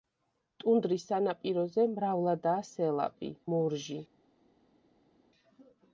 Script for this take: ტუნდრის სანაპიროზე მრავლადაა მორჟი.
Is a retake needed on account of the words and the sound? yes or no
yes